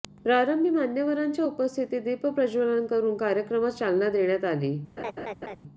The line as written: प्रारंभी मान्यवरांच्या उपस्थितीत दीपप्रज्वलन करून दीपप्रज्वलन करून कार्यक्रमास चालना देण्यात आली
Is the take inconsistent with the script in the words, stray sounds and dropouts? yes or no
yes